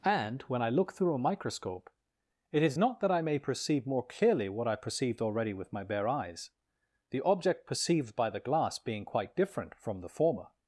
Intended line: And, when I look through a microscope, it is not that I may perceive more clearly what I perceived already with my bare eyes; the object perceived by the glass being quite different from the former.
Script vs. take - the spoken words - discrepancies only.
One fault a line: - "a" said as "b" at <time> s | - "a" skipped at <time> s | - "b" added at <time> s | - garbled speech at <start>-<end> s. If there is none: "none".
none